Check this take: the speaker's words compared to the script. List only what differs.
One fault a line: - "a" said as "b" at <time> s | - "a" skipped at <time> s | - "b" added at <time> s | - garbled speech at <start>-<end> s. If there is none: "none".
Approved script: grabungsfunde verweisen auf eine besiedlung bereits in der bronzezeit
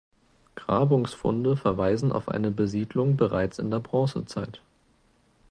none